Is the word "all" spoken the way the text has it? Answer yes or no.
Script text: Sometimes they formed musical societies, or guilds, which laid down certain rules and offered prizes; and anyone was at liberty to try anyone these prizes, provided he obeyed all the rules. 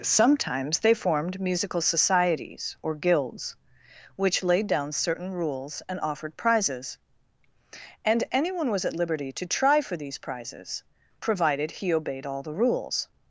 yes